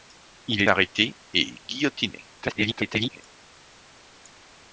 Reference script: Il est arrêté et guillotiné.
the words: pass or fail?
fail